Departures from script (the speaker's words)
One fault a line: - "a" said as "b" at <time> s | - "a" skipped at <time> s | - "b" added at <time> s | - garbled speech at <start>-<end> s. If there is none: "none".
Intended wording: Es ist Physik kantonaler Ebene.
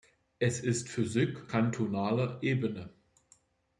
none